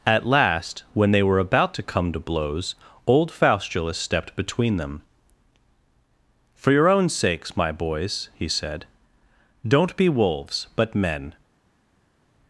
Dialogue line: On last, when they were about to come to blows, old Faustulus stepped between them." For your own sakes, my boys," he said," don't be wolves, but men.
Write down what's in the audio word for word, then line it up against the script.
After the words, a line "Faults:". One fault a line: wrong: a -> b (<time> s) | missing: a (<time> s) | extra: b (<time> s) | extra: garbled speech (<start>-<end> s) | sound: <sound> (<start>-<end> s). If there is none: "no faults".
At last, when they were about to come to blows, old Faustulus stepped between them." For your own sakes, my boys," he said," don't be wolves, but men.
Faults:
wrong: On -> At (0.1 s)